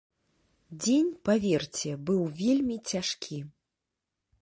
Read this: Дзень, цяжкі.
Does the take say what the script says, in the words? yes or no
no